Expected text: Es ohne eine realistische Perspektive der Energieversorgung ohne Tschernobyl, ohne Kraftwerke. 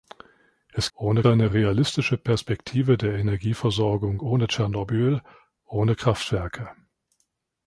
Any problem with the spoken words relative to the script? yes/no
no